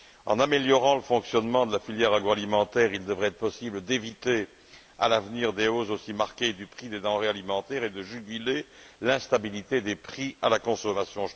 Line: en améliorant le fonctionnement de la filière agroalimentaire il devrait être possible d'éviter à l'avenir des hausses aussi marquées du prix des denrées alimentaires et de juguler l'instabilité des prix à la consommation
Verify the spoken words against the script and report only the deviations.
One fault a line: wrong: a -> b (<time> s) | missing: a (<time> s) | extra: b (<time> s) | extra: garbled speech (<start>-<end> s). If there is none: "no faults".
no faults